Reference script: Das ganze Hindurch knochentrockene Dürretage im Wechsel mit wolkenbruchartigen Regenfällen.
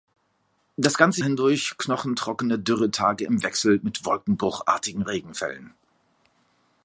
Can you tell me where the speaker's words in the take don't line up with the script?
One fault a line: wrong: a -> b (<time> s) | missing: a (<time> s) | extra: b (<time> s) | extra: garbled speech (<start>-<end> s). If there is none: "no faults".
no faults